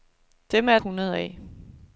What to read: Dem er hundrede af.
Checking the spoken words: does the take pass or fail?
pass